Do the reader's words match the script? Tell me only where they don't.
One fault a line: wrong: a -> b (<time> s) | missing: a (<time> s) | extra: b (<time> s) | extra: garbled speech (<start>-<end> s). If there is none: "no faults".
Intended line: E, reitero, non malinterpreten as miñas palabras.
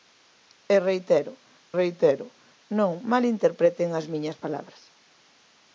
extra: reitero (1.8 s)